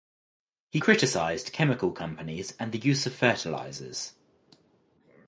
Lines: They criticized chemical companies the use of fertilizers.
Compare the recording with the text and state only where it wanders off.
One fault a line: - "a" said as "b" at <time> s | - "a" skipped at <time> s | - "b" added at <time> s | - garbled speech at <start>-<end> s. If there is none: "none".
- "They" said as "He" at 0.7 s
- "and" added at 2.6 s